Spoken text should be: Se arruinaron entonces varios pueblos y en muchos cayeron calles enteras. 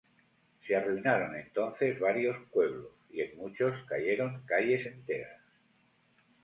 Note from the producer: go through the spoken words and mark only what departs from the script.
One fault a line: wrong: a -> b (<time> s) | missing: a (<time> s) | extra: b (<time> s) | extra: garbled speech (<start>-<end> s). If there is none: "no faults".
no faults